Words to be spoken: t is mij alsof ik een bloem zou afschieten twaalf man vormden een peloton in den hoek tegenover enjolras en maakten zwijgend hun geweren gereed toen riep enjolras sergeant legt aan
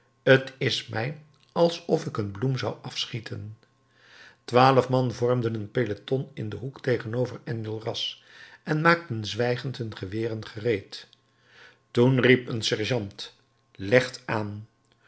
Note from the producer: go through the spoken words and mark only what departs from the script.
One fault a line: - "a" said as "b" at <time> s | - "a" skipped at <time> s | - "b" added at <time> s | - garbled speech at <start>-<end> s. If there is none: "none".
- "enjolras" said as "een" at 12.5 s